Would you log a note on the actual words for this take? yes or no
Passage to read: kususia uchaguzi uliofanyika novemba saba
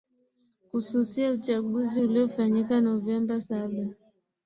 no